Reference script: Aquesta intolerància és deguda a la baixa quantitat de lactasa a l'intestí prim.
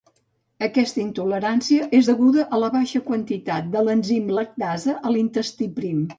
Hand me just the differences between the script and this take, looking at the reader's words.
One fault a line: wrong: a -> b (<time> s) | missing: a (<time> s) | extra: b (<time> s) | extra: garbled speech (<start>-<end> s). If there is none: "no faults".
extra: l'enzim (3.9 s)